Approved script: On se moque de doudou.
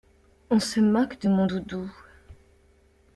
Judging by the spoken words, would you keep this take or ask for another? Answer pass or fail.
fail